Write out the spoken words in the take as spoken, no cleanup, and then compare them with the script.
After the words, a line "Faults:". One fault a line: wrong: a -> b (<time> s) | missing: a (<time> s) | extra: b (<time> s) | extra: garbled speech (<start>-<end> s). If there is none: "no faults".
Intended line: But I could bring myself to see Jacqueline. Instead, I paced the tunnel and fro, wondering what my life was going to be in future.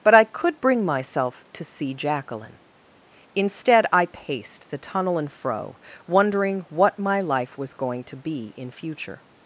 But I could bring myself to see Jacqueline. Instead, I paced the tunnel and fro, wondering what my life was going to be in future.
Faults:
no faults